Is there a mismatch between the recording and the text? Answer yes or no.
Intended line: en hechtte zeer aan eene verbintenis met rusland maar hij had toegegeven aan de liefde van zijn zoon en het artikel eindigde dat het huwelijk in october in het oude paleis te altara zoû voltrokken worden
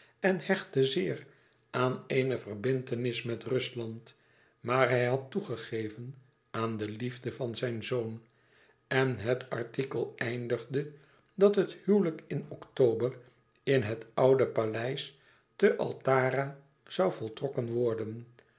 no